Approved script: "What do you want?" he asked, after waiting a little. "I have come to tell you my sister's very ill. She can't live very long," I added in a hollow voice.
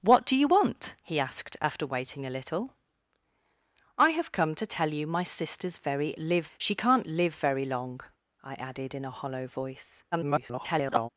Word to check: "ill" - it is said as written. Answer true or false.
false